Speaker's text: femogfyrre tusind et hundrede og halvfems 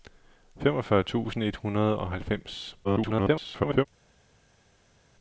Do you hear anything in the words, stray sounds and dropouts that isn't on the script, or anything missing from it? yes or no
yes